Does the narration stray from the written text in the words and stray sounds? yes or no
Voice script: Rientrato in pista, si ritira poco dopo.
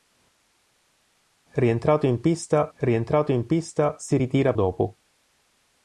yes